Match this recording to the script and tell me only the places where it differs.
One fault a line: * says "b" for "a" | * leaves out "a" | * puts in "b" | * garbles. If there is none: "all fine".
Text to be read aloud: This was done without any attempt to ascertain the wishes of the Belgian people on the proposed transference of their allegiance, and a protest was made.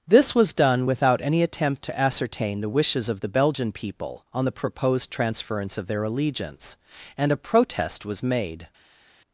all fine